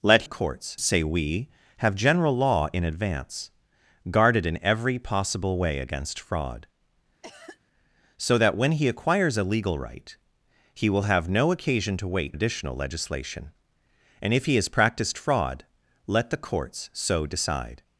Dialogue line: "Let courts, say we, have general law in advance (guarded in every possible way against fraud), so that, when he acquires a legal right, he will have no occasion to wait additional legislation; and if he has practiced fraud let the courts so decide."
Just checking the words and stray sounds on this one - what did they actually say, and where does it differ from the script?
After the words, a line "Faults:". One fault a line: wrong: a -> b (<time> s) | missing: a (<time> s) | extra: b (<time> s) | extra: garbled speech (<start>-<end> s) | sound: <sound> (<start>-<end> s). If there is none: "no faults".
"Let courts, say we, have general law in advance (guarded in every possible way against fraud), so that, when he acquires a legal right, he will have no occasion to wait additional legislation; and if he has practiced fraud let the courts so decide."
Faults:
sound: cough (7.2-7.6 s)